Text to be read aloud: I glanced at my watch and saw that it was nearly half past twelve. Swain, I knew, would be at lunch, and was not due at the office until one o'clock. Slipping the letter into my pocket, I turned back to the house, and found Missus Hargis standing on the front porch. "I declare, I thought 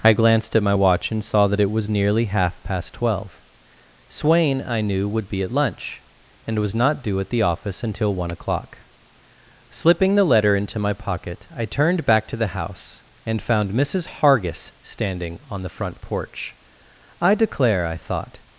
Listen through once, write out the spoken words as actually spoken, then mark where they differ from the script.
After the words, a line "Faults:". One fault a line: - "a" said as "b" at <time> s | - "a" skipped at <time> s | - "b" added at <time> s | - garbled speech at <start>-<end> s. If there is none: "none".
I glanced at my watch and saw that it was nearly half past twelve. Swain, I knew, would be at lunch, and was not due at the office until one o'clock. Slipping the letter into my pocket, I turned back to the house, and found Missus Hargis standing on the front porch. "I declare, I thought
Faults:
none